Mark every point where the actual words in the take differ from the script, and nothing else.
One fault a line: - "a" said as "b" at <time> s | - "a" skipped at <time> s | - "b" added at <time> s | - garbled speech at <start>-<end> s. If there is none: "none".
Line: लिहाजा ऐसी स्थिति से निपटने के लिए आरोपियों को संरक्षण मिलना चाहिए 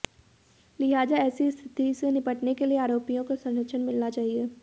none